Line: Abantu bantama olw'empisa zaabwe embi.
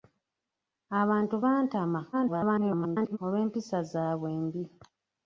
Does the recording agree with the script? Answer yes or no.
no